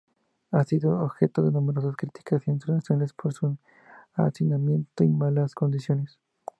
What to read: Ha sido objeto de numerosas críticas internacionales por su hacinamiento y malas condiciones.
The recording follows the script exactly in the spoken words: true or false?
true